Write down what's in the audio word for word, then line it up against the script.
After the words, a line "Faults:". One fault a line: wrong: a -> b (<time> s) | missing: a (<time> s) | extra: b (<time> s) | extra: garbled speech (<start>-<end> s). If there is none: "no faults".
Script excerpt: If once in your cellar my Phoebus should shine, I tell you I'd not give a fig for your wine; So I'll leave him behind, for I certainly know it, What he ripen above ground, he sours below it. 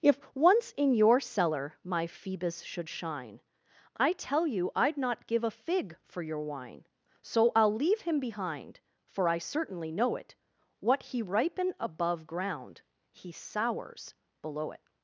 If once in your cellar my Phoebus should shine, I tell you I'd not give a fig for your wine; So I'll leave him behind, for I certainly know it, What he ripen above ground, he sours below it.
Faults:
no faults